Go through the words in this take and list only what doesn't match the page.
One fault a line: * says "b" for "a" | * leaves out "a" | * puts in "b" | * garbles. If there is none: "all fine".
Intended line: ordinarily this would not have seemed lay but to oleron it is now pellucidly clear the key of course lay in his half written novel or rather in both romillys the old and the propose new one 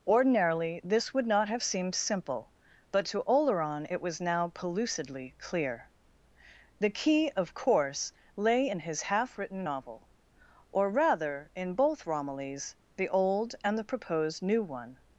* says "simple" for "lay"
* says "was" for "is"
* says "proposed" for "propose"